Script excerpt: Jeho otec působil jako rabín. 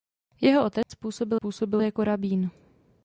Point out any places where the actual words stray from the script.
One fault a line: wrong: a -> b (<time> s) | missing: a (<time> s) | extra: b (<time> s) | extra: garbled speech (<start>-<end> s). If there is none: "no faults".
extra: působil (1.3 s)